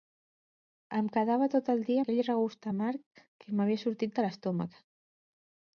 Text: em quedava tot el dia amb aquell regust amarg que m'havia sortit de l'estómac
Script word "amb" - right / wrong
wrong